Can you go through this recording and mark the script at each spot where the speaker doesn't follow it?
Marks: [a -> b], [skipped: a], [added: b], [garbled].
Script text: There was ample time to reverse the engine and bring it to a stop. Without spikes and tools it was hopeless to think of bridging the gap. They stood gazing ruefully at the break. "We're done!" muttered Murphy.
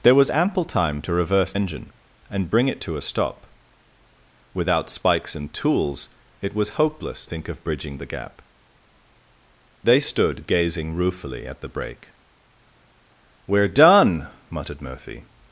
There was ample time to reverse [skipped: the] engine and bring it to a stop. Without spikes and tools it was hopeless [skipped: to] think of bridging the gap. They stood gazing ruefully at the break. "We're done!" muttered Murphy.